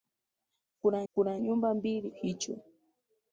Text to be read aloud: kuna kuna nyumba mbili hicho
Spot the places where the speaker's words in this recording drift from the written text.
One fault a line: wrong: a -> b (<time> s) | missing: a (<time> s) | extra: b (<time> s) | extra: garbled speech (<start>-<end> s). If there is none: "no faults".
no faults